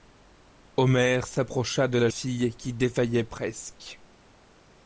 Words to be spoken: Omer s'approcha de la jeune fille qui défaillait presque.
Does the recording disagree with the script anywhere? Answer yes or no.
yes